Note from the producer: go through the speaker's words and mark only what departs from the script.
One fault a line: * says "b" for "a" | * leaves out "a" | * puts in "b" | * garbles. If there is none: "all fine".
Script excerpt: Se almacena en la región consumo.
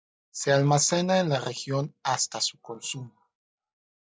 * puts in "hasta su"